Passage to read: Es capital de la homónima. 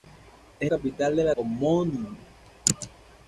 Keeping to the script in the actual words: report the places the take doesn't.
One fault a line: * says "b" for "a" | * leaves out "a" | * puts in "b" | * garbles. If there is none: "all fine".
all fine